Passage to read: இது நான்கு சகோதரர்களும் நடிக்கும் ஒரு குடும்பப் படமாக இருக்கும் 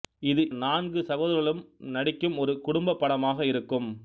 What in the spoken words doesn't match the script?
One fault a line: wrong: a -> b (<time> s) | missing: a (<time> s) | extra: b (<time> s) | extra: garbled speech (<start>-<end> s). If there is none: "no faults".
no faults